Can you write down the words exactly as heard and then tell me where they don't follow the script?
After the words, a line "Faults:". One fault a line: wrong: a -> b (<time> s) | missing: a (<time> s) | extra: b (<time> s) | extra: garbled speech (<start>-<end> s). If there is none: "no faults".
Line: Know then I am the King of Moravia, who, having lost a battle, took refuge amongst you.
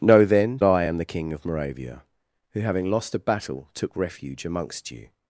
Know then I am the King of Moravia, who, having lost a battle, took refuge amongst you.
Faults:
no faults